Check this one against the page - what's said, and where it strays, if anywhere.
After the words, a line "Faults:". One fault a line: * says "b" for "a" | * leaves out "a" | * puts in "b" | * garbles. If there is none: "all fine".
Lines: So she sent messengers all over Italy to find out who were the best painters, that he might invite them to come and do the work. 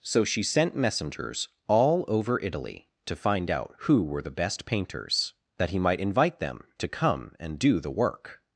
So she sent messengers all over Italy to find out who were the best painters, that he might invite them to come and do the work.
Faults:
all fine